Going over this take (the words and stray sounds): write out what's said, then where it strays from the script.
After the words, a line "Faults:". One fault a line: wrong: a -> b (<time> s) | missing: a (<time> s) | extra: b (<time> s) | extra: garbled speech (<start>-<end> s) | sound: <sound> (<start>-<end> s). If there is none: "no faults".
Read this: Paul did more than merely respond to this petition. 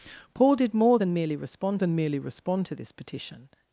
Paul did more than merely respond than merely respond to this petition.
Faults:
extra: than merely respond (1.8 s)